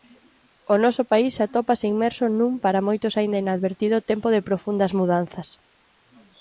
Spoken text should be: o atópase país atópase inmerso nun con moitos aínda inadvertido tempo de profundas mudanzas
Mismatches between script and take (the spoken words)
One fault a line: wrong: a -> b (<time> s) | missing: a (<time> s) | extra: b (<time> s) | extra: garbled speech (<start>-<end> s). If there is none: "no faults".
wrong: atópase -> noso (0.8 s)
wrong: con -> para (2.6 s)